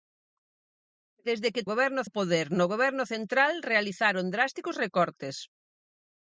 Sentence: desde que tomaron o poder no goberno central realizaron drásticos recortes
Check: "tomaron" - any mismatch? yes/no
yes